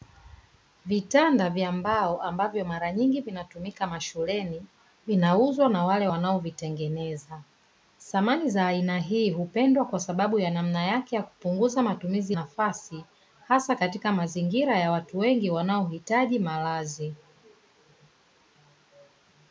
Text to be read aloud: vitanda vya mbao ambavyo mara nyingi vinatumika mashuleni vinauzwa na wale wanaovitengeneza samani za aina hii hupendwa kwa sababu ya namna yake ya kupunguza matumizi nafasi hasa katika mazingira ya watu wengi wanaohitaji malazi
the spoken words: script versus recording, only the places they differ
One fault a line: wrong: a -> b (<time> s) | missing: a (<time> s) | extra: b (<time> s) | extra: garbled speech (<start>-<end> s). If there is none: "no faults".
no faults